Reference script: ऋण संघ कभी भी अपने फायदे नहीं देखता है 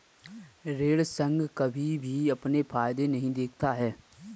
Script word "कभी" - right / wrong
right